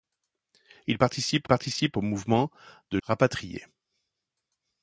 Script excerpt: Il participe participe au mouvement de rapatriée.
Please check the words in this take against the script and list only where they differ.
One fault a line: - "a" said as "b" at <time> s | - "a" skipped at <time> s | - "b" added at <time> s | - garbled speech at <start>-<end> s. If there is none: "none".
none